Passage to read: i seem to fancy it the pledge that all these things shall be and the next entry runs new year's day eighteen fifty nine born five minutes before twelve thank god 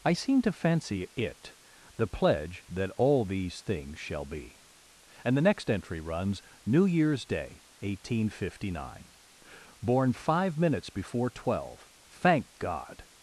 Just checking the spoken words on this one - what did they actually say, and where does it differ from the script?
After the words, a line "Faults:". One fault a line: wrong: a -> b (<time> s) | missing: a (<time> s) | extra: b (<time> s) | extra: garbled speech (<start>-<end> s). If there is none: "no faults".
i seem to fancy it the pledge that all these things shall be and the next entry runs new year's day eighteen fifty nine born five minutes before twelve thank god
Faults:
no faults